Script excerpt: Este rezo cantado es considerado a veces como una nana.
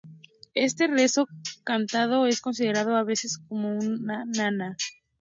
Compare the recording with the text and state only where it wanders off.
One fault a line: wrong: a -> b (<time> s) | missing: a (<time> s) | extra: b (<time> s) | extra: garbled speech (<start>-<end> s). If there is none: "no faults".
no faults